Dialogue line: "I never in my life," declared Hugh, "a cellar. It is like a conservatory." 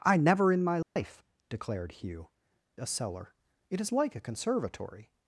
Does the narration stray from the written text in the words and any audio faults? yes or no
yes